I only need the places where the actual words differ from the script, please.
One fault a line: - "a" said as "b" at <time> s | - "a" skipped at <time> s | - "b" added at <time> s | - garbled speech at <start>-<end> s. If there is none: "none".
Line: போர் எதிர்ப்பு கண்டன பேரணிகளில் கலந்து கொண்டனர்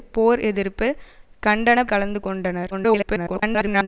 - "பேரணிகளில்" skipped at 1.8 s
- garbled speech at 2.7-3.9 s